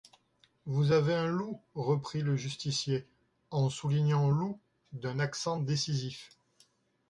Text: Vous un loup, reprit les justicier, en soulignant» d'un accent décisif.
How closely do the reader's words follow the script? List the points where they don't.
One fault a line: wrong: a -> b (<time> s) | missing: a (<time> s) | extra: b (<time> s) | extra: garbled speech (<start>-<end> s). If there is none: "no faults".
extra: avez (0.9 s)
wrong: les -> le (2.2 s)
extra: loup (4.3 s)